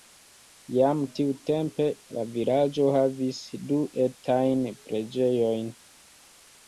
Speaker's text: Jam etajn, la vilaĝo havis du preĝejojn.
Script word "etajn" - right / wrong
wrong